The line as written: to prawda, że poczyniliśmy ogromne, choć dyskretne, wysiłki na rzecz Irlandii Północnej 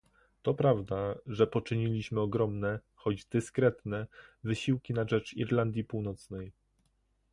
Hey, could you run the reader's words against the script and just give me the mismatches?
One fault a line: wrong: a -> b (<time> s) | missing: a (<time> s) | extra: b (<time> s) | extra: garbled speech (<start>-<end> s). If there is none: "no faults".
no faults